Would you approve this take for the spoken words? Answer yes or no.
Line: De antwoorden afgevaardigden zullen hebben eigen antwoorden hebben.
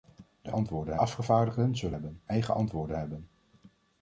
yes